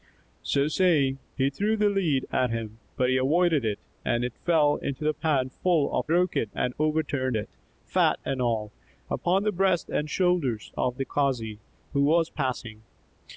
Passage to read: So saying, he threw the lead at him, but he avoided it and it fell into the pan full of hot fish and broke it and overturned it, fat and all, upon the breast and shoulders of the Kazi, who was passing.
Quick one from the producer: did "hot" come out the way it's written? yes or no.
no